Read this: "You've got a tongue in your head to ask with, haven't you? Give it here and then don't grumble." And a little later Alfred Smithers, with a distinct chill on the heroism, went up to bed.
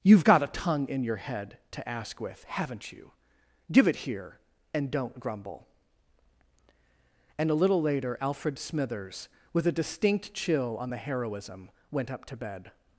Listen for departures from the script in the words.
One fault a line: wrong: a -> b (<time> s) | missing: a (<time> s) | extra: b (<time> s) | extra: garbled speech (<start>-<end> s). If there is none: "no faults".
missing: then (4.9 s)